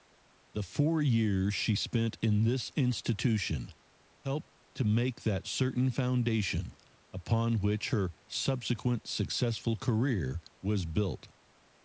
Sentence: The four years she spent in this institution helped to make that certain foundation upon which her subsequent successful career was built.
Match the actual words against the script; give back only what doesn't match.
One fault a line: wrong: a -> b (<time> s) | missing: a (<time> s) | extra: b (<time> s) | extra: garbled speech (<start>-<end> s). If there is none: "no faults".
no faults